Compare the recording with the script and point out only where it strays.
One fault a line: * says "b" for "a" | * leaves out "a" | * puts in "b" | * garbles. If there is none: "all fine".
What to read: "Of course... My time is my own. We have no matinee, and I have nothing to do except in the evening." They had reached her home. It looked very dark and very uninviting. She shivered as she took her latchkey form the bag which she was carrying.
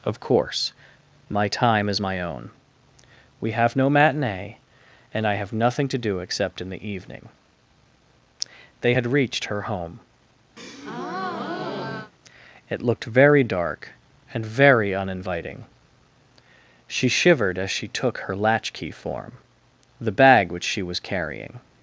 all fine